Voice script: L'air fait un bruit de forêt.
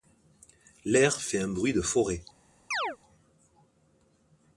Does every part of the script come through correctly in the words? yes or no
yes